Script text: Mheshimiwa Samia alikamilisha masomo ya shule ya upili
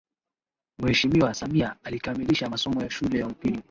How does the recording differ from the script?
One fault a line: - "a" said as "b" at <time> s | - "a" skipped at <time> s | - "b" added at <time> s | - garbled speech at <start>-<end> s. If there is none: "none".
none